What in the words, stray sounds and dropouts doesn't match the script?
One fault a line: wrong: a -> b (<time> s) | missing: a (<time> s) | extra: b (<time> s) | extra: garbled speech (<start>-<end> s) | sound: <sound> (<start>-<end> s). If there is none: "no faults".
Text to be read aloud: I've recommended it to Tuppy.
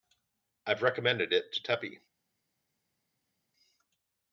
no faults